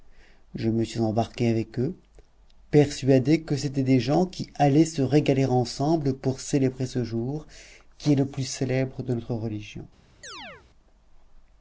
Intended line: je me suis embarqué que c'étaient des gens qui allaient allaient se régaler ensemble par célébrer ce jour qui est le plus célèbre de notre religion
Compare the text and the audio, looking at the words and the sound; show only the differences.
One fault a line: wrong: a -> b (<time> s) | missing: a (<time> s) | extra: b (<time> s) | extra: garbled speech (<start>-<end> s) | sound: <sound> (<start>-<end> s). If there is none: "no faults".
extra: avec eux persuadé (1.5 s)
missing: allaient (4.8 s)
wrong: par -> pour (6.2 s)
sound: chirp (10.2-10.7 s)